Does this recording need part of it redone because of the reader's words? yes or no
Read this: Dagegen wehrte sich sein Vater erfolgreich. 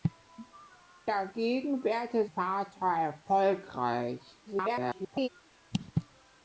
yes